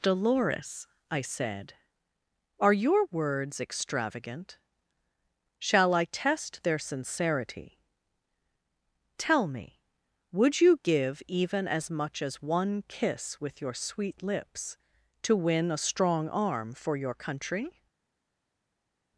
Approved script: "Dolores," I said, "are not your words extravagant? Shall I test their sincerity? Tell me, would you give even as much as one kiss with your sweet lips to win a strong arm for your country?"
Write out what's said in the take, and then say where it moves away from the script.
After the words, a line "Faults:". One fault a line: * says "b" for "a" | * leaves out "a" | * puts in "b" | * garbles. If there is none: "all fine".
"Dolores," I said, "are your words extravagant? Shall I test their sincerity? Tell me, would you give even as much as one kiss with your sweet lips to win a strong arm for your country?"
Faults:
* leaves out "not"